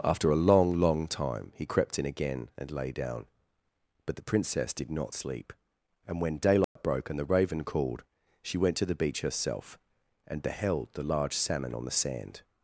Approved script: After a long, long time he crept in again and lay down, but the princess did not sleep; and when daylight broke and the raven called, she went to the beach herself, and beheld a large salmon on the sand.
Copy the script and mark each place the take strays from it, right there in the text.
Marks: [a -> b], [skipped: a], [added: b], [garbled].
After a long, long time he crept in again and lay down, but the princess did not sleep; and when daylight broke and the raven called, she went to the beach herself, and beheld [a -> the] large salmon on the sand.